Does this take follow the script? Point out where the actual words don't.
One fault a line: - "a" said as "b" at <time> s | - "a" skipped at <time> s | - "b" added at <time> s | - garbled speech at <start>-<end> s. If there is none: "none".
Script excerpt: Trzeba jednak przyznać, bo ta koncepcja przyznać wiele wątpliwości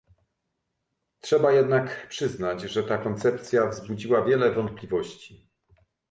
- "bo" said as "że" at 2.6 s
- "przyznać" said as "wzbudziła" at 3.7 s